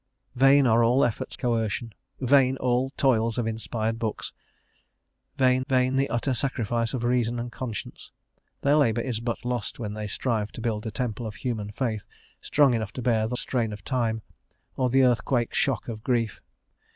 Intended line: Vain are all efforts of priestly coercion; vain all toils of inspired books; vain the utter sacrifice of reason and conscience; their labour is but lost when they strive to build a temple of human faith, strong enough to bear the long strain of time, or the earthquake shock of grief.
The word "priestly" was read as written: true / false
false